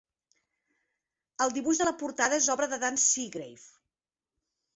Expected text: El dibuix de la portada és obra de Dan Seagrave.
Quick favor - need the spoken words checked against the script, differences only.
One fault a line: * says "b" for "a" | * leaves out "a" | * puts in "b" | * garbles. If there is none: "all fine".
all fine